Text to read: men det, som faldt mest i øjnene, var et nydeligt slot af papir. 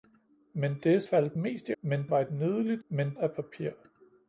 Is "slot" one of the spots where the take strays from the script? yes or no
yes